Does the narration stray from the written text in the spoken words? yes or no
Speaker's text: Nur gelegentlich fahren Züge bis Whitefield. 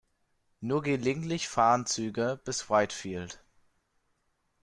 no